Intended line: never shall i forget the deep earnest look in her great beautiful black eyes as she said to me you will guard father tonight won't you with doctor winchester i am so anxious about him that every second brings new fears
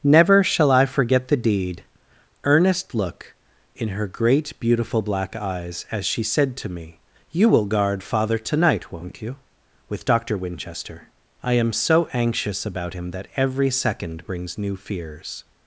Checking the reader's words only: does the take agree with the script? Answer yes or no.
no